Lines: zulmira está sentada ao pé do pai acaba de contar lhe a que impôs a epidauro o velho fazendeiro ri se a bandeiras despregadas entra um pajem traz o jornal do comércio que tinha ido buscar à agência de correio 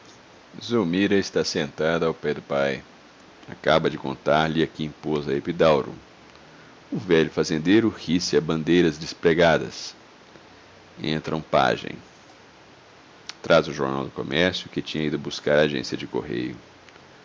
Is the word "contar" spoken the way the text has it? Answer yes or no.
yes